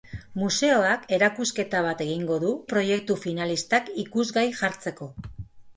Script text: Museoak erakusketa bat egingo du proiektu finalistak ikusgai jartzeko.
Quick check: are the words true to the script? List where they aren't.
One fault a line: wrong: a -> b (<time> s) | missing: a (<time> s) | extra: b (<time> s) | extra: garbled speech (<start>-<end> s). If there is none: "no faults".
no faults